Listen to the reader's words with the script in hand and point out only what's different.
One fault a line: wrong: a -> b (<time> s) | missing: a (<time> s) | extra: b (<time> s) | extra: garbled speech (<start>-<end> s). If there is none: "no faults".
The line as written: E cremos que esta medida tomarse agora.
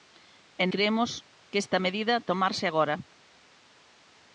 no faults